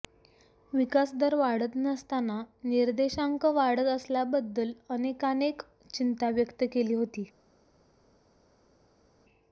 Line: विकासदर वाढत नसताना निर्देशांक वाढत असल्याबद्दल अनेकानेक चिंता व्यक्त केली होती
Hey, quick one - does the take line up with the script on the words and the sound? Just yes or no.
yes